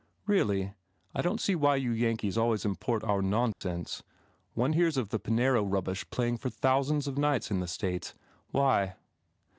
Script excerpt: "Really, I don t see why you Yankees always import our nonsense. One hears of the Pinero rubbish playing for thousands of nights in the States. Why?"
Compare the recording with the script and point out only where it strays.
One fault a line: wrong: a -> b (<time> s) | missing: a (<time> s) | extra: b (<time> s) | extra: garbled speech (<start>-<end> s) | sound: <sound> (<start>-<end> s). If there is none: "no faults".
sound: dropout (3.5-3.6 s)